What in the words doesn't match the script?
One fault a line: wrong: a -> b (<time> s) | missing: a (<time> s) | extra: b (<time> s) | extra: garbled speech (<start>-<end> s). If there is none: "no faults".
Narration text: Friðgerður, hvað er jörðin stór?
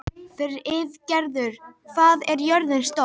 no faults